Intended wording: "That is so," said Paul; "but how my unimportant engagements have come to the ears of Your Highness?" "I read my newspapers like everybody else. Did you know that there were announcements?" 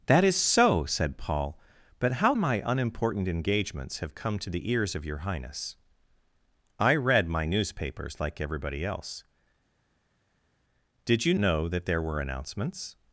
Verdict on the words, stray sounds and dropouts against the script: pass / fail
pass